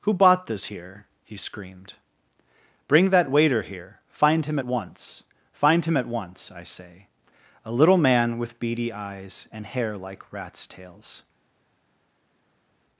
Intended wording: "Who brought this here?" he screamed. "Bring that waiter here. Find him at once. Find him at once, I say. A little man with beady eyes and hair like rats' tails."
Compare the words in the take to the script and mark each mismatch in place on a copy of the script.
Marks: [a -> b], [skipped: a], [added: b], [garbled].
"Who [brought -> bought] this here?" he screamed. "Bring that waiter here. Find him at once. Find him at once, I say. A little man with beady eyes and hair like rats' tails."